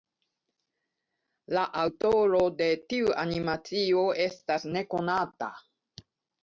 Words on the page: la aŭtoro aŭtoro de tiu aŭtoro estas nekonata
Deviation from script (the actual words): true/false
true